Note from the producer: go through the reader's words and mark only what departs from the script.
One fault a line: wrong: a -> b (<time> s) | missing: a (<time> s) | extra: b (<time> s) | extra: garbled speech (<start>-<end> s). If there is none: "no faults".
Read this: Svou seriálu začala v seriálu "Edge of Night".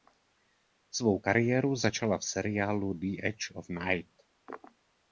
wrong: seriálu -> kariéru (1.2 s)
extra: The (2.9 s)